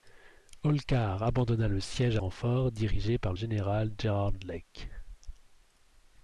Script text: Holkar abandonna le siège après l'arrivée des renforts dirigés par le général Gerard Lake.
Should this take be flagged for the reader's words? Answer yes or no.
yes